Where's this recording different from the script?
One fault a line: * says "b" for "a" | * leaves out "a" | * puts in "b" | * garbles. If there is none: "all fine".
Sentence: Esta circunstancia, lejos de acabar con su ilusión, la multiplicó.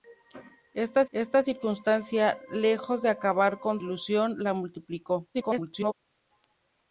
* puts in "esta"
* leaves out "su"
* garbles